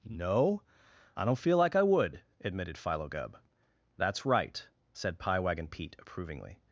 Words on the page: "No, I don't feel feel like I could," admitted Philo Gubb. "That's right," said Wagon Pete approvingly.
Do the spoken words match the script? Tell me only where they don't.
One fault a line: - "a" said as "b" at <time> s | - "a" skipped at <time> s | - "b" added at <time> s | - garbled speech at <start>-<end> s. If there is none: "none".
- "feel" skipped at 1.6 s
- "could" said as "would" at 1.8 s
- "Pie" added at 5.2 s